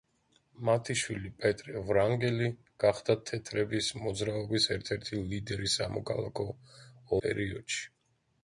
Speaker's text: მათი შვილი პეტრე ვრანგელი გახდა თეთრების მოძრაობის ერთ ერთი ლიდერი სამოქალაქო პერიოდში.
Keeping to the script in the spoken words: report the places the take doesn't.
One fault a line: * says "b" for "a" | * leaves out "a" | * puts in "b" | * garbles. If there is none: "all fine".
all fine